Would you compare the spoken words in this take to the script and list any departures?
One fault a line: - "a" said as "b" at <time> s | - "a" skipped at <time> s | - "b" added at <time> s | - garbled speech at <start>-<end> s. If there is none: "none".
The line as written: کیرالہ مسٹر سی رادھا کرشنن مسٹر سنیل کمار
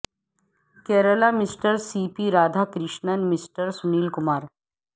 - "پی" added at 2.1 s